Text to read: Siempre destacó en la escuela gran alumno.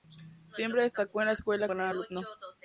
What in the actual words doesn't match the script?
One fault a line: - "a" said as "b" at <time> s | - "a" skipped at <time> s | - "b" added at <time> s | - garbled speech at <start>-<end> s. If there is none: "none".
none